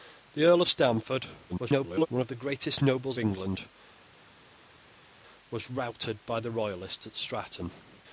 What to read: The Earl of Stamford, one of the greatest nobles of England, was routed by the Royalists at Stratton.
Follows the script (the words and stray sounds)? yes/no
no